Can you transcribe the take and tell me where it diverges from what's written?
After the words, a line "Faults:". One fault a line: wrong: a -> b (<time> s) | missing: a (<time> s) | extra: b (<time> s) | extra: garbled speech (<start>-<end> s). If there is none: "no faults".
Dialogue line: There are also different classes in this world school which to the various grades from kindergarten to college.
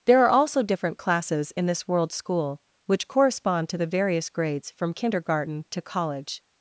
There are also different classes in this world school which correspond to the various grades from kindergarten to college.
Faults:
extra: correspond (3.1 s)